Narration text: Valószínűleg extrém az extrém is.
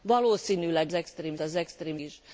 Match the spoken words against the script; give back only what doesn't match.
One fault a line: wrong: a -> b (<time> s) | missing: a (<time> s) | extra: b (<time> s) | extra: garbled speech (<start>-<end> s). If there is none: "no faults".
no faults